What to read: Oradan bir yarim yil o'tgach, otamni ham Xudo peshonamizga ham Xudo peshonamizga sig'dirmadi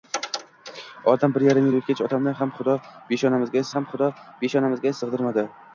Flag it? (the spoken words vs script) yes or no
no